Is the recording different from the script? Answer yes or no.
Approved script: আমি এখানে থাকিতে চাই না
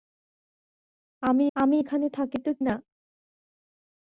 yes